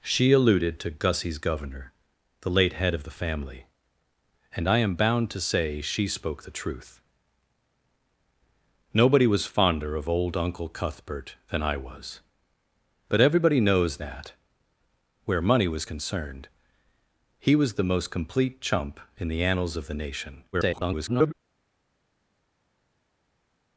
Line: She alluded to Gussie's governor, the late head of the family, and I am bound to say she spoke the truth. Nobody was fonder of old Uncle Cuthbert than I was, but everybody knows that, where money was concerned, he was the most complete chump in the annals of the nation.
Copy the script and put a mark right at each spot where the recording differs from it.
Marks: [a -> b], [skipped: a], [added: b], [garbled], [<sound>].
She alluded to Gussie's governor, the late head of the family, and I am bound to say she spoke the truth. Nobody was fonder of old Uncle Cuthbert than I was, but everybody knows that, where money was concerned, he was the most complete chump in the annals of the nation. [garbled]